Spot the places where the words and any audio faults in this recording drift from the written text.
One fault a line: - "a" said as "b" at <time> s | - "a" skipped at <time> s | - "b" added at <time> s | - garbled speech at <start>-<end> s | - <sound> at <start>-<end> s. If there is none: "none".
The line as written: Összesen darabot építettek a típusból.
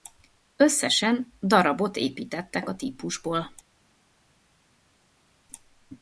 none